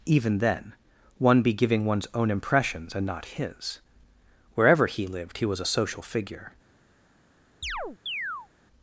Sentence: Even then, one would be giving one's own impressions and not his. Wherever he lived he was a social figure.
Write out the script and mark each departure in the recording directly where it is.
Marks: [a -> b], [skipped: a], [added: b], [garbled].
Even then, one [skipped: would] be giving one's own impressions and not his. Wherever he lived he was a social figure.